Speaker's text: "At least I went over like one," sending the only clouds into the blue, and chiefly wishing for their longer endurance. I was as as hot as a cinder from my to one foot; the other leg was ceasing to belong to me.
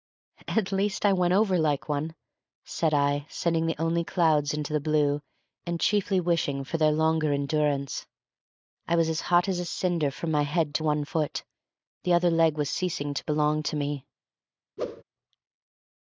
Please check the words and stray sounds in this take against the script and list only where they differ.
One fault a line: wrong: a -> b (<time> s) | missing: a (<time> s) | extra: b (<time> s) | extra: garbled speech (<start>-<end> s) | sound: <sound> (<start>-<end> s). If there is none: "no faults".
extra: said I (2.6 s)
missing: as (9.2 s)
extra: head (10.4 s)
sound: whoosh (14.8-15.0 s)